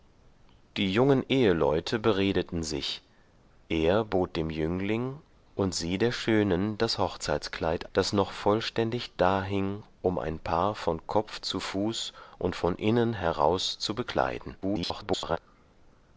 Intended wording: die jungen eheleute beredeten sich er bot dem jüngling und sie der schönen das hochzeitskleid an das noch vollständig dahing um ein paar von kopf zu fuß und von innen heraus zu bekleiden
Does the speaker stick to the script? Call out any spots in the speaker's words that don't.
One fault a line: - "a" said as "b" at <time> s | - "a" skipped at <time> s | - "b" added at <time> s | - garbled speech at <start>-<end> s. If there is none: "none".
- "an" skipped at 7.9 s
- garbled speech at 14.6-15.4 s